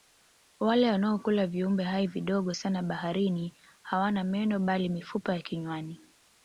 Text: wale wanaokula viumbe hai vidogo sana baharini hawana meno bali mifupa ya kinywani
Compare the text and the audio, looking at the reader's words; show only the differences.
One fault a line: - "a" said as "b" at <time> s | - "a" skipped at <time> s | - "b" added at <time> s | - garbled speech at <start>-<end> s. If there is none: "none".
none